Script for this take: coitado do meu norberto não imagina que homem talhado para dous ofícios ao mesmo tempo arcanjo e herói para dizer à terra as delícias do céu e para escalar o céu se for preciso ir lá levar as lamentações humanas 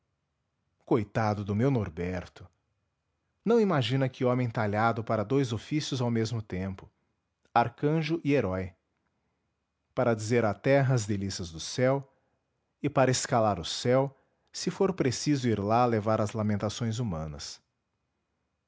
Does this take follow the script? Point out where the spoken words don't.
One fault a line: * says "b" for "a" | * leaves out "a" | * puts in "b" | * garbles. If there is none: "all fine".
all fine